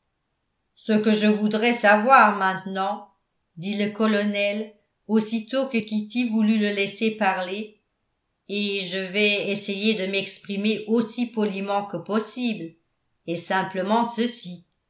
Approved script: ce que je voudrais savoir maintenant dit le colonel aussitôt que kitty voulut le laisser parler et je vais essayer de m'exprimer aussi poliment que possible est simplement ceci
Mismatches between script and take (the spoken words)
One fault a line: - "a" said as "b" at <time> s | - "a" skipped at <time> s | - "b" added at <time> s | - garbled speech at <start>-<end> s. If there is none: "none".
none